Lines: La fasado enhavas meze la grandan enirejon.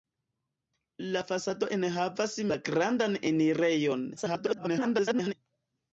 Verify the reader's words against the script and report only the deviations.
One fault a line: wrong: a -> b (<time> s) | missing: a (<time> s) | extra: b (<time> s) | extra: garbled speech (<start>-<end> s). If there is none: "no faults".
missing: meze (2.4 s)
extra: garbled speech (4.2-5.3 s)